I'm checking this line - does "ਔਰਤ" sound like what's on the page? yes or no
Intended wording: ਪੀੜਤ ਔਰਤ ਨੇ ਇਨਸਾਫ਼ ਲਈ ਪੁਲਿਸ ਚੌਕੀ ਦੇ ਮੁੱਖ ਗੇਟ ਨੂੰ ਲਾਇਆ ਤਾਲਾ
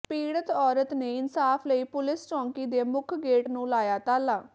yes